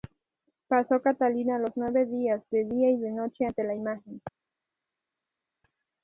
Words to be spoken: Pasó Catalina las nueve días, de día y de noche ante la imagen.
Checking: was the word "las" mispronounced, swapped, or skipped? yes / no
yes